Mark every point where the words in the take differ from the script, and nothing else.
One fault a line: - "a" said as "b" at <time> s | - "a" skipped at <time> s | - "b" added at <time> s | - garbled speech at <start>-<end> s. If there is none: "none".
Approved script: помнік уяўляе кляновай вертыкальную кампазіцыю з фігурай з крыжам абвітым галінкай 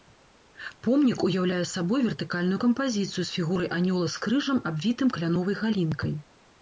- "кляновай" said as "сабой" at 1.7 s
- "анёла" added at 3.8 s
- "кляновай" added at 5.2 s